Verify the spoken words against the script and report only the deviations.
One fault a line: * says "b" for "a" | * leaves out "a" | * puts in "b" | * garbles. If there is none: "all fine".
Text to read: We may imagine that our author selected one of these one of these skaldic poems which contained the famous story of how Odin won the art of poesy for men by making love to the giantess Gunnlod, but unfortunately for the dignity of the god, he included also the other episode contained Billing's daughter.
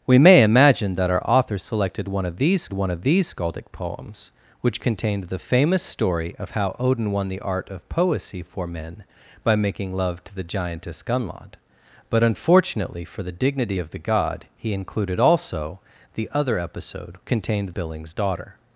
all fine